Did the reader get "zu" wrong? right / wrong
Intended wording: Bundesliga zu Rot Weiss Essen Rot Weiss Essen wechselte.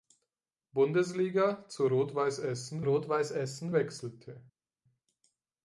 right